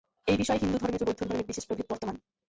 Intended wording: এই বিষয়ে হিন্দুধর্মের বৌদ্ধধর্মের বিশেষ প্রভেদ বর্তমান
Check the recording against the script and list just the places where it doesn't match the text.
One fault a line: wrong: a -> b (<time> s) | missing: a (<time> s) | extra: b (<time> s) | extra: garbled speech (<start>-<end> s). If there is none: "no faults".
no faults